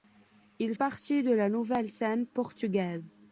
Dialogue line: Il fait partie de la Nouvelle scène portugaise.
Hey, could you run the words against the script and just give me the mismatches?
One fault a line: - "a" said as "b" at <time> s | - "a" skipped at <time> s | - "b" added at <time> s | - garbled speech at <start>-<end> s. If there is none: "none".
- "fait" skipped at 0.7 s